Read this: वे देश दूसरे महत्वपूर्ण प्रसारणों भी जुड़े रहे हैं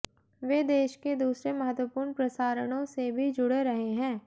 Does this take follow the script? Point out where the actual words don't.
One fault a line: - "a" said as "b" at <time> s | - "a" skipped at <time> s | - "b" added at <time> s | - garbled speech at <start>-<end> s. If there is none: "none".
- "के" added at 0.9 s
- "से" added at 2.9 s